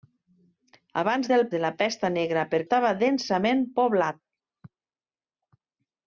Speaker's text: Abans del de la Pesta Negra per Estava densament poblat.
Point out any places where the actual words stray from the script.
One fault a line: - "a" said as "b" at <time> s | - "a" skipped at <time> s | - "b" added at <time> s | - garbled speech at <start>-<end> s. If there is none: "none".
none